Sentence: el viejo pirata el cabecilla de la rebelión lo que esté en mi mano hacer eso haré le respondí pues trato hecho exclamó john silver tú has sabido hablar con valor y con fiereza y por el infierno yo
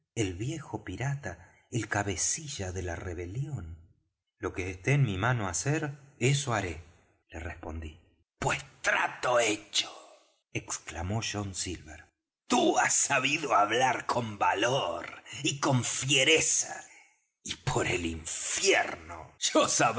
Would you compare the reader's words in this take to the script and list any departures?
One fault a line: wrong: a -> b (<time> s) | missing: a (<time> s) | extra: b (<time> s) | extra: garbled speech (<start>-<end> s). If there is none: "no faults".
no faults